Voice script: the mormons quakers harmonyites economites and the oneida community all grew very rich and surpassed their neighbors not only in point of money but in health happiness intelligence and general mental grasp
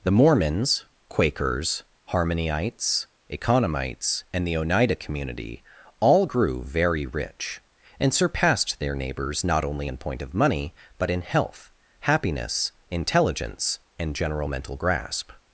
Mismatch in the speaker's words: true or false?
false